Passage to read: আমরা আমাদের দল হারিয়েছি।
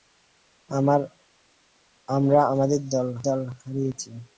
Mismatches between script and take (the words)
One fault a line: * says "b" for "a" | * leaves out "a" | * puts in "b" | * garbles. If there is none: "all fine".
* puts in "দল"